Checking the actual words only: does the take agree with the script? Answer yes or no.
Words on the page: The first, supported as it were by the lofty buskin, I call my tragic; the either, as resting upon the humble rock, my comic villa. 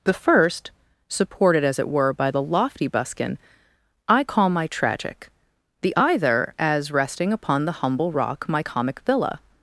yes